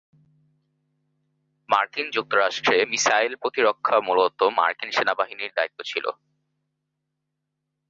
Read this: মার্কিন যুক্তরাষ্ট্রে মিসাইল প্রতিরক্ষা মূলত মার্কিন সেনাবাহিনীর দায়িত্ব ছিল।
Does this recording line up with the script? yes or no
yes